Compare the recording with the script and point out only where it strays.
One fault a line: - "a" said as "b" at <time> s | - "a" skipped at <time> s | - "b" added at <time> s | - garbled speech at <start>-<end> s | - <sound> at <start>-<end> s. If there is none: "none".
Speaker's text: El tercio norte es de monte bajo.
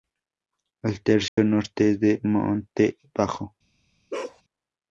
- dropout at 1.3-1.4 s
- bark at 4.1-4.4 s